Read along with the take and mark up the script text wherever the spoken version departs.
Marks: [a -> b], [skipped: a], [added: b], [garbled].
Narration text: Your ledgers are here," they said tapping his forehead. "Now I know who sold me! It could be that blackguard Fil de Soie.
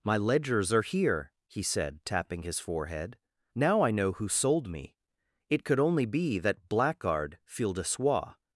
[Your -> My] ledgers are here," [they -> he] said tapping his forehead. "Now I know who sold me! It could [added: only] be that blackguard Fil de Soie.